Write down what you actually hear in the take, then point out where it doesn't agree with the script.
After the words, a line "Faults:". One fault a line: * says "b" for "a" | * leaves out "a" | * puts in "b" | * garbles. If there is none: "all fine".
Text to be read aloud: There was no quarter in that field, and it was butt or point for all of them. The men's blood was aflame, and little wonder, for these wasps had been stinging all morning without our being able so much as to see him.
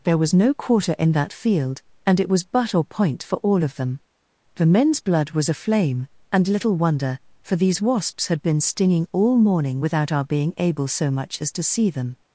There was no quarter in that field, and it was butt or point for all of them. The men's blood was aflame, and little wonder, for these wasps had been stinging all morning without our being able so much as to see them.
Faults:
* says "them" for "him"